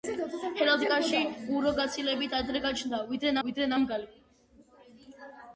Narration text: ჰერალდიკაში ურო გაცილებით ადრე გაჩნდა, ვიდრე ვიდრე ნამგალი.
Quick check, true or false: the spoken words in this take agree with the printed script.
true